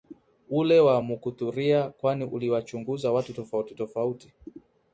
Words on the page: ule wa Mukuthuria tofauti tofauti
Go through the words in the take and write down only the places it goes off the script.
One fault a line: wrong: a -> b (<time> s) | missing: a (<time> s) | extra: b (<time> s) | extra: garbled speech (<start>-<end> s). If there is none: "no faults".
extra: kwani uliwachunguza watu (1.9 s)